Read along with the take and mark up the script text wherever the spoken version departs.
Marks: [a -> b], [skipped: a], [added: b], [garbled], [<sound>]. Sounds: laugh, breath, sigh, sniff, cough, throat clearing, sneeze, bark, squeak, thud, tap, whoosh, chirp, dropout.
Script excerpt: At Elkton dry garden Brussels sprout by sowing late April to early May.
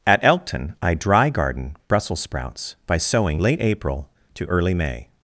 At Elkton [added: I] dry garden Brussels [sprout -> sprouts] by sowing late April to early May.